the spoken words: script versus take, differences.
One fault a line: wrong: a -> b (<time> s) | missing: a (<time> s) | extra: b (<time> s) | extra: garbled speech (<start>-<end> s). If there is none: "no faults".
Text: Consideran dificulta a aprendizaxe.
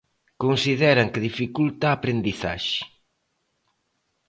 extra: que (1.1 s)